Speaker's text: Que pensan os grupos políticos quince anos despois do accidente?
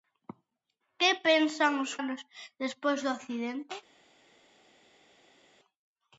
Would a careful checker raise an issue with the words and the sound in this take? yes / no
yes